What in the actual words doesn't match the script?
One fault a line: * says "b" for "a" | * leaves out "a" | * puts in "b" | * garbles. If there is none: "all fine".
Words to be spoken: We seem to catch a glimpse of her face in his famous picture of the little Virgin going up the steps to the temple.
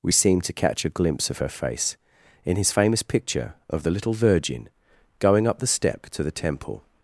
* says "step" for "steps"